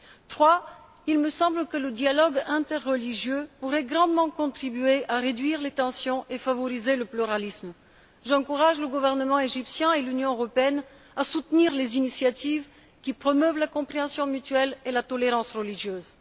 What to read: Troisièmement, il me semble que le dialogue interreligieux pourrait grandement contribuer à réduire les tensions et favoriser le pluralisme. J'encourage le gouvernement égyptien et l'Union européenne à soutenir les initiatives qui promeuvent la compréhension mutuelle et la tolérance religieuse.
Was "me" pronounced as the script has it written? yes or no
yes